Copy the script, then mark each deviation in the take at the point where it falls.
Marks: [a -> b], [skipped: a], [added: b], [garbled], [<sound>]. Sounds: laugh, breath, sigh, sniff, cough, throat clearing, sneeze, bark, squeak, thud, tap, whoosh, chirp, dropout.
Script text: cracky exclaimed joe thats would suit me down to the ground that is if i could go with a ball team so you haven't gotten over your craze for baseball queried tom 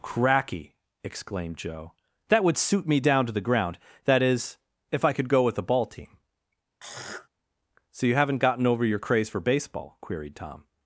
cracky exclaimed joe [thats -> that] would suit me down to the ground that is if i could go with a ball team [throat clearing] so you haven't gotten over your craze for baseball queried tom